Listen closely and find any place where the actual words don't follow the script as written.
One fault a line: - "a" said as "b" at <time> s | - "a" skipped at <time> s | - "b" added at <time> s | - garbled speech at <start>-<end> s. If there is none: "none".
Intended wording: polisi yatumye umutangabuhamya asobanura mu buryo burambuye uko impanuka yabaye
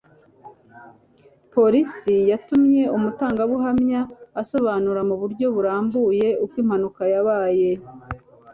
none